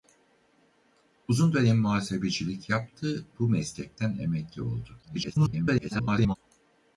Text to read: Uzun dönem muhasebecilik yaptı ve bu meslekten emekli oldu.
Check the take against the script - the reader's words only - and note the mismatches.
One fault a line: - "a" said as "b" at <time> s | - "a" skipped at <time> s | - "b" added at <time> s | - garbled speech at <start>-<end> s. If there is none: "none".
- "ve" skipped at 3.2 s
- garbled speech at 5.0-6.4 s